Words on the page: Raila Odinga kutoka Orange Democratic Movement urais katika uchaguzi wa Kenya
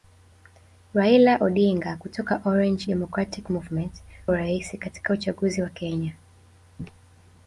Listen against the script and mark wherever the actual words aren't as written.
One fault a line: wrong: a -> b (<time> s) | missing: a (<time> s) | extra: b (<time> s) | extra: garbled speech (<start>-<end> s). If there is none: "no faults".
no faults